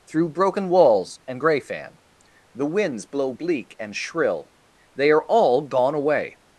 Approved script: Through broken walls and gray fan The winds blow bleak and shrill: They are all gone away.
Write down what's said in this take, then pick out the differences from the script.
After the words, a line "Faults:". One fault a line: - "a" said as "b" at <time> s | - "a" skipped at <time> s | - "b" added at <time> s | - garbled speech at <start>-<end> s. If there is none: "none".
Through broken walls and gray fan The winds blow bleak and shrill: They are all gone away.
Faults:
none